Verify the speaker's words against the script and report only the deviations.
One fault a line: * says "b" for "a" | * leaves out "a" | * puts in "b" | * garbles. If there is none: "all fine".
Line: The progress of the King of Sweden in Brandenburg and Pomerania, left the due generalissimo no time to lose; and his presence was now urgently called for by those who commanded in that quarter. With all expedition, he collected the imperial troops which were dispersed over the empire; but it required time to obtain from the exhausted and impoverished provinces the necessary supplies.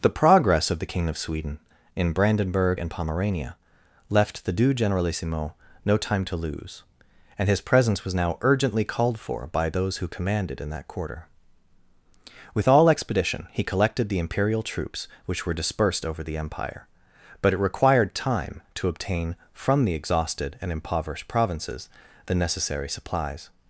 all fine